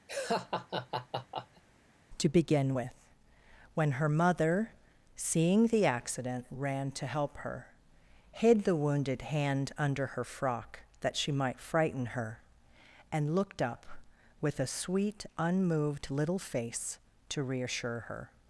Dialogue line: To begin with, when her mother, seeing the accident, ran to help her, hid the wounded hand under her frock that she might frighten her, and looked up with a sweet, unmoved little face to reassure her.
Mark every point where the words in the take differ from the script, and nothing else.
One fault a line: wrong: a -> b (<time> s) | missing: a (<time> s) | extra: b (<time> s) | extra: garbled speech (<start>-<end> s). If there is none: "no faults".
no faults